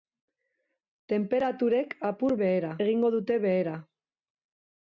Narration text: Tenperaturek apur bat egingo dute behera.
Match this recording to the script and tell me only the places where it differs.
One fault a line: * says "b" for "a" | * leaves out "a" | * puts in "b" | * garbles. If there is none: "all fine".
* says "behera" for "bat"